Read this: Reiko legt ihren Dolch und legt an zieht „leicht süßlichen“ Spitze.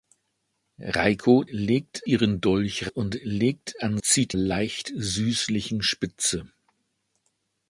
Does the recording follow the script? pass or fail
pass